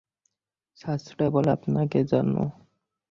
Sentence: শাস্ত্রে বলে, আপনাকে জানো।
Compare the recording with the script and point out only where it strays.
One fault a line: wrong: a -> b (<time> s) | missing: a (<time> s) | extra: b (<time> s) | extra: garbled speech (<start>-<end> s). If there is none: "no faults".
no faults